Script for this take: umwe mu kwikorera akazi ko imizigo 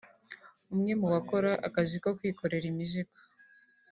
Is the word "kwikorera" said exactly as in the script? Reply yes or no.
no